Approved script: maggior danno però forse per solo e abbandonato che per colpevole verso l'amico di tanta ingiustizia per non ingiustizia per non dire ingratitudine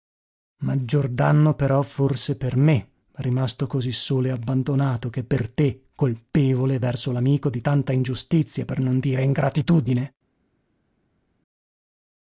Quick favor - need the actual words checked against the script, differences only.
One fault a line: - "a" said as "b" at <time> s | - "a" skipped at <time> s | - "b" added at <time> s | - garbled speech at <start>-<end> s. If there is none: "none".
- "me rimasto così" added at 2.5 s
- "te" added at 5.5 s
- "ingiustizia per non" skipped at 9.0 s